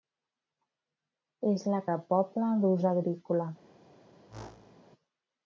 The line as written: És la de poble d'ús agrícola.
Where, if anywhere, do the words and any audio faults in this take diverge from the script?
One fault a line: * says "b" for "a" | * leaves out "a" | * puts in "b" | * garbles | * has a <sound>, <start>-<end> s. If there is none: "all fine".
* has a whoosh, 4.3-4.8 s